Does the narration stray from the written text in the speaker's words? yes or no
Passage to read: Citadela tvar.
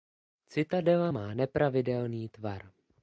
yes